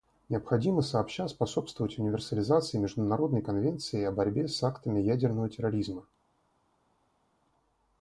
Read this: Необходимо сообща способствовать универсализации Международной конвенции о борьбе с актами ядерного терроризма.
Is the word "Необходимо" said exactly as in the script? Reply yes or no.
yes